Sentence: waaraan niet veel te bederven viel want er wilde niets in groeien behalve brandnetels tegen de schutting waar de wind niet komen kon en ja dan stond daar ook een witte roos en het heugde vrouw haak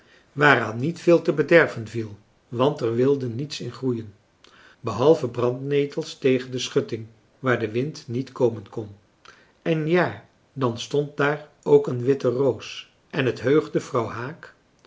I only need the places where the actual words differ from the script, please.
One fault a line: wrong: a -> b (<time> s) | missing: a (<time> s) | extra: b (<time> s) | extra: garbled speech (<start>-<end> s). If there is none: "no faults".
no faults